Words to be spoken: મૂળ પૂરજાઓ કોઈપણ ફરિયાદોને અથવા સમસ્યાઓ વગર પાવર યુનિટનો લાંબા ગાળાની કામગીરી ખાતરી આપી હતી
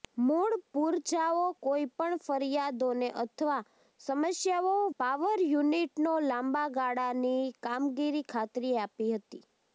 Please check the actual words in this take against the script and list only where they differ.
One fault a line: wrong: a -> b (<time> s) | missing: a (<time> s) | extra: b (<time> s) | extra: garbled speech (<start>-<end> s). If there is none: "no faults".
missing: વગર (4.7 s)